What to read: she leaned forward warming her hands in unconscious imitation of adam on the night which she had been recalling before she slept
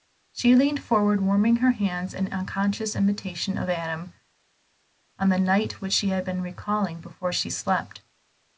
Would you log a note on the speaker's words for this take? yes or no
no